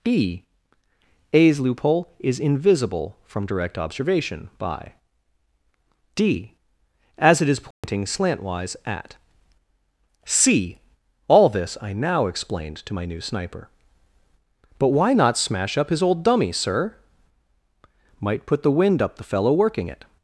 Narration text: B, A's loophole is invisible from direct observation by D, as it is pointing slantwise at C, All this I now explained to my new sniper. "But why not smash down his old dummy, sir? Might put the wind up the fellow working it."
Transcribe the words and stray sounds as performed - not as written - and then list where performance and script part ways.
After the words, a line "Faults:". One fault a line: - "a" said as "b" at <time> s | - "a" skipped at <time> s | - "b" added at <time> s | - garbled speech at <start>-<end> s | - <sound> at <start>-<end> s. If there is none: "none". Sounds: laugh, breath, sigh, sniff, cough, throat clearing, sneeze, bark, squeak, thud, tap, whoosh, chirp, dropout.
B, A's loophole is invisible from direct observation by D, as it is pointing slantwise at C, All this I now explained to my new sniper. "But why not smash up his old dummy, sir? Might put the wind up the fellow working it."
Faults:
- dropout at 7.7-7.8 s
- "down" said as "up" at 15.8 s